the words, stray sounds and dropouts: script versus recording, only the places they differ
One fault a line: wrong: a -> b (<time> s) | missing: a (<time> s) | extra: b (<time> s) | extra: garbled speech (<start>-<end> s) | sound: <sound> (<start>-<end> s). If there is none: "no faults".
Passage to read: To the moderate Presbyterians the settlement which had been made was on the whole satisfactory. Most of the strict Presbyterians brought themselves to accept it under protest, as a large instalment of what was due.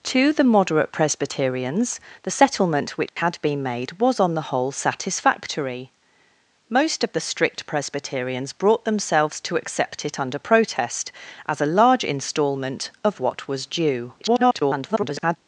sound: dropout (3.1-3.2 s)
extra: garbled speech (14.2-15.4 s)